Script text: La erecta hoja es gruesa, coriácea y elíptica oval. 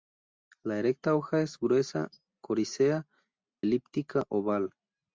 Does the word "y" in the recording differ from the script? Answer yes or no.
yes